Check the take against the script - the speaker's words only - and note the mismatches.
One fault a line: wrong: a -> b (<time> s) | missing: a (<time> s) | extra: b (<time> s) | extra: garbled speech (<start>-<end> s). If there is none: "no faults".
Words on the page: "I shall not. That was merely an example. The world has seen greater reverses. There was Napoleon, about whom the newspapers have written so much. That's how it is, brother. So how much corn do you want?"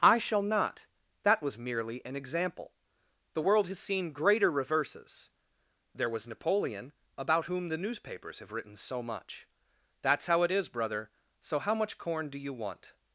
no faults